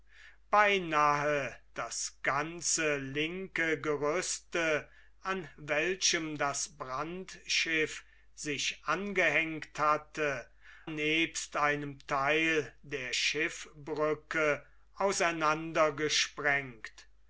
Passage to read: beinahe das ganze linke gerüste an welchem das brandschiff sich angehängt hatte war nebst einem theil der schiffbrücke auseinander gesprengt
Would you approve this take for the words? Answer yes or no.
no